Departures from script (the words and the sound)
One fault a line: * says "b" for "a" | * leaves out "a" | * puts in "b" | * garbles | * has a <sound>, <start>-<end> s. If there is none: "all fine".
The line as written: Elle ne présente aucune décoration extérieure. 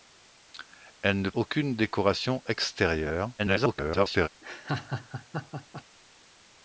* leaves out "présente"
* garbles
* has a laugh, 4.4-5.8 s